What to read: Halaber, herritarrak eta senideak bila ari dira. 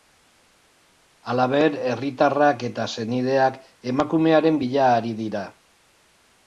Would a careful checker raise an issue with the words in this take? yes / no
yes